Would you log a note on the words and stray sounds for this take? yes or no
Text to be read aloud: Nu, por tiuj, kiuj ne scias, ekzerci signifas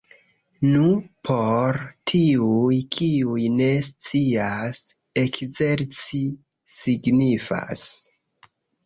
no